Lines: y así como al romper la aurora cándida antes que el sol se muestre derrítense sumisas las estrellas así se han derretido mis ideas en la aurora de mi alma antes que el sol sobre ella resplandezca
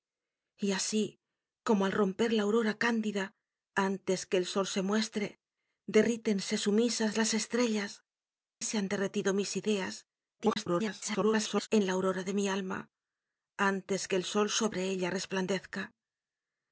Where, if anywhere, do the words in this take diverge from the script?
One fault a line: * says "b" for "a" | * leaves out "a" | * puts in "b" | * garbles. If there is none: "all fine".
* leaves out "así"
* garbles